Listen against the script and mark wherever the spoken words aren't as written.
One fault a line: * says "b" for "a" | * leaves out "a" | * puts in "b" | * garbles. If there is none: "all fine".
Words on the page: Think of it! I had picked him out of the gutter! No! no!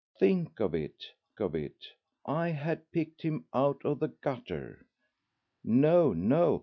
* puts in "of it"